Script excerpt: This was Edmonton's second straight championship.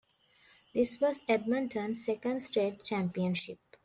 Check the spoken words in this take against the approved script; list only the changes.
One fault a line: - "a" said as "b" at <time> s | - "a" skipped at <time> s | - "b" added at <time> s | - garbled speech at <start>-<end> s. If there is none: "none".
none